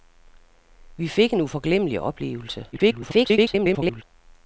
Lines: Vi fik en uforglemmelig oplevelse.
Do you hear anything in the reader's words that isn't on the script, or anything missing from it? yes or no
yes